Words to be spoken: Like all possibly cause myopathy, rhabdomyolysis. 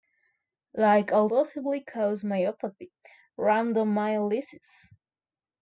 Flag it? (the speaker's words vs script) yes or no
no